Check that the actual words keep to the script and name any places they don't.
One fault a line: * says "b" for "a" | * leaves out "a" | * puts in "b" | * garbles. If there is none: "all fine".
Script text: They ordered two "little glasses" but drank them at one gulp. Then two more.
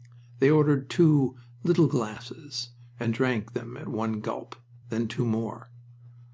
* says "and" for "but"